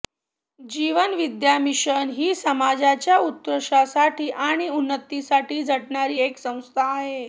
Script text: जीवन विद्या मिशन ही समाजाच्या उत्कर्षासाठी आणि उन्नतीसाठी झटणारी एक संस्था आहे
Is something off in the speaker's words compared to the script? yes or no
no